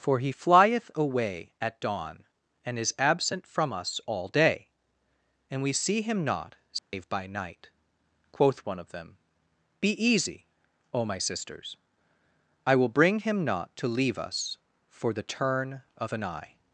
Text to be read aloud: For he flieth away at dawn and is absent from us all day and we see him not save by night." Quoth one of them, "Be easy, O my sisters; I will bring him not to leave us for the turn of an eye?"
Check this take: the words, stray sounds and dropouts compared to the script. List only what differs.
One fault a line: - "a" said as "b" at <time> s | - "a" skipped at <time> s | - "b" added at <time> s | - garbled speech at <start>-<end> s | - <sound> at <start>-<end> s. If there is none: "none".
- dropout at 6.8-6.9 s